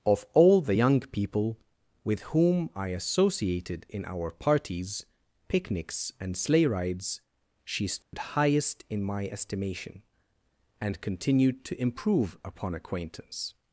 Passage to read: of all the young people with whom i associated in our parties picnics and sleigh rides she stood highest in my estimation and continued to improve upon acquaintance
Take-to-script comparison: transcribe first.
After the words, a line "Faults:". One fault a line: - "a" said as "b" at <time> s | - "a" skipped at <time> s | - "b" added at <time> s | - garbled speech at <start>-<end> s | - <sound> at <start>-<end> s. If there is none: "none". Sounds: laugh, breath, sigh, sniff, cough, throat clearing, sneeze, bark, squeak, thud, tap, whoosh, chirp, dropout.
of all the young people with whom i associated in our parties picnics and sleigh rides she stood highest in my estimation and continued to improve upon acquaintance
Faults:
- dropout at 8.0-8.1 s